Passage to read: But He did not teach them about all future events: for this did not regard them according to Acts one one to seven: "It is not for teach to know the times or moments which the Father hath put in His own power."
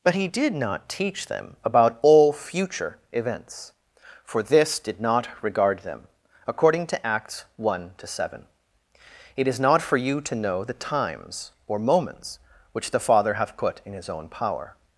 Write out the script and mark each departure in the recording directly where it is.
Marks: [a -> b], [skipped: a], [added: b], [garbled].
But He did not teach them about all future events: for this did not regard them according to Acts one [skipped: one] to seven: "It is not for [teach -> you] to know the times or moments which the Father hath put in His own power."